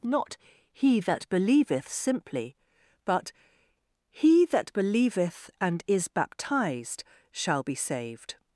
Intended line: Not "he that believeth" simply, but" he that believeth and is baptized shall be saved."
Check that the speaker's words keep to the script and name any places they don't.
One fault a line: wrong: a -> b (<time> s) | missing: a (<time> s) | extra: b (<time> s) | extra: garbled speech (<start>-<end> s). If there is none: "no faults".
no faults